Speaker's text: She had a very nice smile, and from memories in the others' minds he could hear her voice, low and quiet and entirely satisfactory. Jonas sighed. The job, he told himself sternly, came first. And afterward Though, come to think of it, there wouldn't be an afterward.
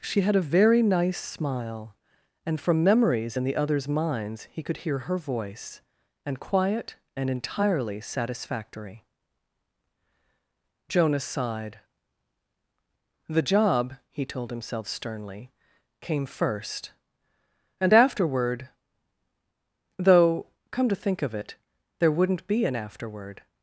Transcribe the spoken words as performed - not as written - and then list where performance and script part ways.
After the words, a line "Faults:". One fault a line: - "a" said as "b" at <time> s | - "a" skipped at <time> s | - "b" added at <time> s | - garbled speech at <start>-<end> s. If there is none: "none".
She had a very nice smile, and from memories in the others' minds he could hear her voice, and quiet and entirely satisfactory. Jonas sighed. The job, he told himself sternly, came first. And afterward Though, come to think of it, there wouldn't be an afterward.
Faults:
- "low" skipped at 5.8 s